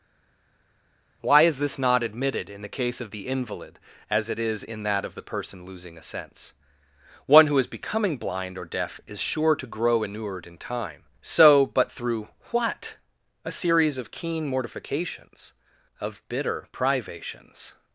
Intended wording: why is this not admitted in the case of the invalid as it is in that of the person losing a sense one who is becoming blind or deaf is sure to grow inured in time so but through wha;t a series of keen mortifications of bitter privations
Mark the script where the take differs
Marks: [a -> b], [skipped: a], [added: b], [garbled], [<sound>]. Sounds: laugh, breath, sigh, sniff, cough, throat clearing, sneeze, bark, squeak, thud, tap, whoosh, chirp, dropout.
why is this not admitted in the case of the invalid as it is in that of the person losing a sense one who is becoming blind or deaf is sure to grow inured in time so but through wha;t a series of keen mortifications of bitter privations